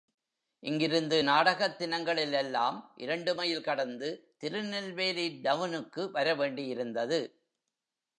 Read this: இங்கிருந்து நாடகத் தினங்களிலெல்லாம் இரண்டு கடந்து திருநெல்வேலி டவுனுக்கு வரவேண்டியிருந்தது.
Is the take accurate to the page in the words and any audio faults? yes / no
no